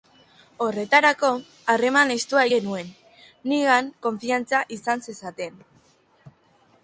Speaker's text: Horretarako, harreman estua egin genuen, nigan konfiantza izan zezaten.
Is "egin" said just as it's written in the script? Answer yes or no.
no